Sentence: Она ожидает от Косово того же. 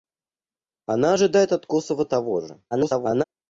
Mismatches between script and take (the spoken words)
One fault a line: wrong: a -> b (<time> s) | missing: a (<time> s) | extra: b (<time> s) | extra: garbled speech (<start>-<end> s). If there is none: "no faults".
extra: garbled speech (2.7-3.2 s)